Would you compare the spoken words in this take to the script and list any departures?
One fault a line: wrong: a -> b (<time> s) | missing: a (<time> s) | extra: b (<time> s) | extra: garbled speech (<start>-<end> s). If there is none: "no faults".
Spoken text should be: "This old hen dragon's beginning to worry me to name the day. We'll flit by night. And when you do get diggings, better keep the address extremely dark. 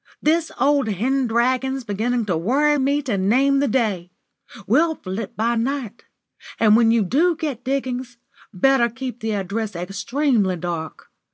no faults